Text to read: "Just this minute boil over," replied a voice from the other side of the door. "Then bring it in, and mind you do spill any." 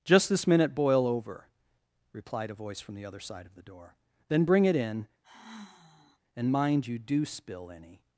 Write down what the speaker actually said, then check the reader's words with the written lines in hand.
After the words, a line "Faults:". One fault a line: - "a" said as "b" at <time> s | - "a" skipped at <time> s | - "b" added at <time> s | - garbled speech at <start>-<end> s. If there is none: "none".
"Just this minute boil over," replied a voice from the other side of the door. "Then bring it in, and mind you do spill any."
Faults:
none